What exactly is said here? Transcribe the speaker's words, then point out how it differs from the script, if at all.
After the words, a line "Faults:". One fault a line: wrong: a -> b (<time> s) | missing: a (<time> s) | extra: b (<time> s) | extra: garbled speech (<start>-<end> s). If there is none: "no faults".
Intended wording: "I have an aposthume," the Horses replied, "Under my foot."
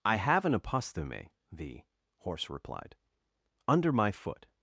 "I have an aposthume," the Horse replied, "Under my foot."
Faults:
wrong: Horses -> Horse (2.2 s)